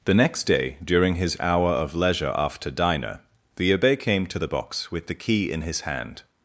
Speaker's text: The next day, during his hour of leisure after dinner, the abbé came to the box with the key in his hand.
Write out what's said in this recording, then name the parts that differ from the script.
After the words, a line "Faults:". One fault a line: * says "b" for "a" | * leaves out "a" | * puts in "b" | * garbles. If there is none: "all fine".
The next day, during his hour of leisure after diner, the abbé came to the box with the key in his hand.
Faults:
* says "diner" for "dinner"